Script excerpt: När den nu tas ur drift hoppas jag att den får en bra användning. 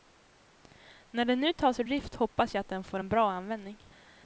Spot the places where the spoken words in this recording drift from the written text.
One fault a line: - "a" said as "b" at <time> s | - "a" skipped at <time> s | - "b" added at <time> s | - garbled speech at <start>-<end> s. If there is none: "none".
none